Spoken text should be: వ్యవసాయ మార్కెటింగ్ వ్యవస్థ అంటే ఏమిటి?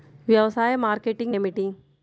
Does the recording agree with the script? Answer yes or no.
no